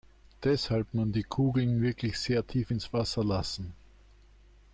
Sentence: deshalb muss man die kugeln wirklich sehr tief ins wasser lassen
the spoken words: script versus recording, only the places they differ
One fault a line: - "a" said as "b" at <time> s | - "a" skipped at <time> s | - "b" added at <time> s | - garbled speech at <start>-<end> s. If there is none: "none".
- "muss" skipped at 0.9 s